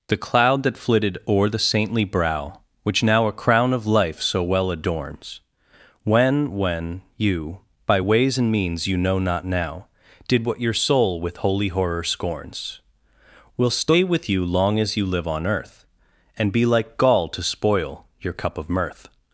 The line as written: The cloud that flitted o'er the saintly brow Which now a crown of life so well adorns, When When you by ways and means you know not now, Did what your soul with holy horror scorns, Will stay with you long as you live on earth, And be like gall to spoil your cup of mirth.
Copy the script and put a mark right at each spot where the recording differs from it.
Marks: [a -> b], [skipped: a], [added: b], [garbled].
The cloud that flitted o'er the saintly brow Which now a crown of life so well adorns, When When you by ways and means you know not now, Did what your soul with holy horror scorns, Will stay with you long as you live on earth, And be like gall to spoil your cup of mirth.